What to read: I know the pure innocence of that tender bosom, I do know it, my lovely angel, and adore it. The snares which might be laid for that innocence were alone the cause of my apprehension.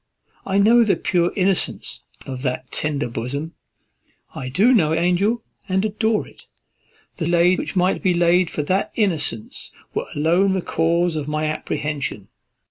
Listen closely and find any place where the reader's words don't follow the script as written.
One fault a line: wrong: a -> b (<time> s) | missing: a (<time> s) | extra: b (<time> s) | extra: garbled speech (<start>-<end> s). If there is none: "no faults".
missing: it my lovely (4.9 s)
wrong: snares -> laid (7.3 s)